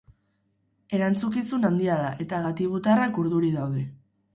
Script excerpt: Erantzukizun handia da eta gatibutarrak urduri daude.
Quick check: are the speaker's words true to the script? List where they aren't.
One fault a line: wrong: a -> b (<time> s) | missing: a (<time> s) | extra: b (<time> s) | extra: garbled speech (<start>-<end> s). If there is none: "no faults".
no faults